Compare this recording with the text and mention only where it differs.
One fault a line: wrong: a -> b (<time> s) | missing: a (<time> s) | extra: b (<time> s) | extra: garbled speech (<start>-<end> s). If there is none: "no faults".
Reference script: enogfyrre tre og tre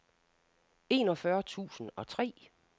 wrong: tre -> tusind (1.4 s)